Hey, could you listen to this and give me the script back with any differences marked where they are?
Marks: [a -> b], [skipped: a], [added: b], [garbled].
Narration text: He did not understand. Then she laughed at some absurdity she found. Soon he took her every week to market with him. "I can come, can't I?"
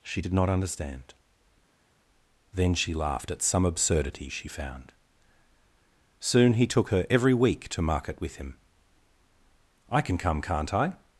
[He -> She] did not understand. Then she laughed at some absurdity she found. Soon he took her every week to market with him. "I can come, can't I?"